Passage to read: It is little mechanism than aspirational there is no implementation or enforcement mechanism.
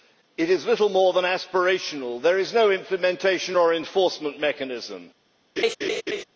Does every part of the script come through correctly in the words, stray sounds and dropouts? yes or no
no